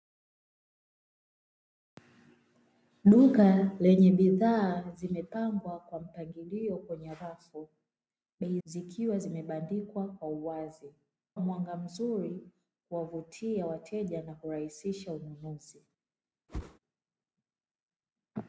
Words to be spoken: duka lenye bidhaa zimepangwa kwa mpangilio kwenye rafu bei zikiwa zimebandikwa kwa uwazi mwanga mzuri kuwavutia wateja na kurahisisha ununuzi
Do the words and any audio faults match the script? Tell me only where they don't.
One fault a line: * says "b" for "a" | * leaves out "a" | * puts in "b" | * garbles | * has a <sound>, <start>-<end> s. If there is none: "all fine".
* has a whoosh, 16.5-16.8 s